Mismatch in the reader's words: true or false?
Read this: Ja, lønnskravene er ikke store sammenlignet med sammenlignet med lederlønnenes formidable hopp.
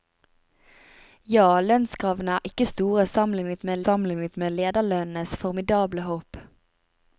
false